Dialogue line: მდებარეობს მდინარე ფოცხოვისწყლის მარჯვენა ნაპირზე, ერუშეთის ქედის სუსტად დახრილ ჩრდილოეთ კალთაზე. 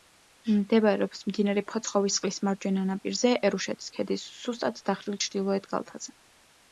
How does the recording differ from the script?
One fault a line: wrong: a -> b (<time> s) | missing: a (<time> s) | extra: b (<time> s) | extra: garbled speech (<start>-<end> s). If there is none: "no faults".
no faults